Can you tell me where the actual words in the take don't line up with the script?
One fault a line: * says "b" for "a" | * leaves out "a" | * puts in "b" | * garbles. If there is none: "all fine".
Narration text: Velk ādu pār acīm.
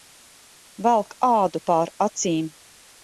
all fine